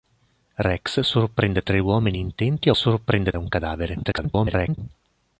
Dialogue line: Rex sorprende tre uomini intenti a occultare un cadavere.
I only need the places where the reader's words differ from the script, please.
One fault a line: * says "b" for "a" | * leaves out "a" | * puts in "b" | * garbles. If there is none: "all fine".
* says "sorprende" for "occultare"
* garbles